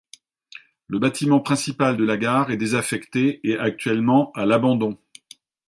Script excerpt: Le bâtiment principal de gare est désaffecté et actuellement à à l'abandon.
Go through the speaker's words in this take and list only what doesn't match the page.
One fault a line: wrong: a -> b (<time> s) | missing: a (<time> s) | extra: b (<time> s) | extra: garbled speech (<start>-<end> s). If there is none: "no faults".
extra: la (2.0 s)
missing: à (4.4 s)